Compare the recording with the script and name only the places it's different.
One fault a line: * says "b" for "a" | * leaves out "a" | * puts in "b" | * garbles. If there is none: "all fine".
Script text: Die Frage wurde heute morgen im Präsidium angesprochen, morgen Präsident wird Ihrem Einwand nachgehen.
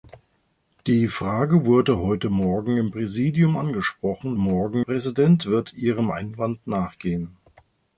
all fine